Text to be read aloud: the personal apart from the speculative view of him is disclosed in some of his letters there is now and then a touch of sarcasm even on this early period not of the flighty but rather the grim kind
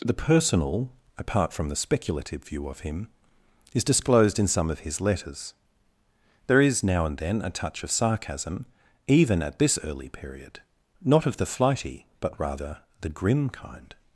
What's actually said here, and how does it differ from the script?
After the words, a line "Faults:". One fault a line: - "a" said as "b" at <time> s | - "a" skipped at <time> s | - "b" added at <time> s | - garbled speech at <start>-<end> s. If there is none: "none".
the personal apart from the speculative view of him is disclosed in some of his letters there is now and then a touch of sarcasm even at this early period not of the flighty but rather the grim kind
Faults:
- "on" said as "at" at 9.4 s